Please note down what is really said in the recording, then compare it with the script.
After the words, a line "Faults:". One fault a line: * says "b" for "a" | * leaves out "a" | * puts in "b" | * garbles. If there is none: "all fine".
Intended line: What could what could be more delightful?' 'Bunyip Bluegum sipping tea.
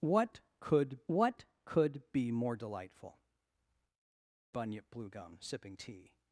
What could what could be more delightful?' 'Bunyip Bluegum sipping tea.
Faults:
all fine